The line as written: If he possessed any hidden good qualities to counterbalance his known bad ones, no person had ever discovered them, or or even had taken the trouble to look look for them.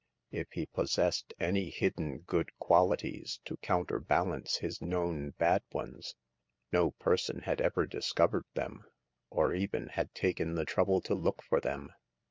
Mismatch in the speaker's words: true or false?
true